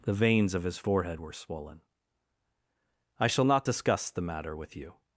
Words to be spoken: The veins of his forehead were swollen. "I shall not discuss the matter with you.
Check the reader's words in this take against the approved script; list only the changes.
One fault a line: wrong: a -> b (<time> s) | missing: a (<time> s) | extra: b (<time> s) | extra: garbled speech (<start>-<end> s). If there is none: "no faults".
no faults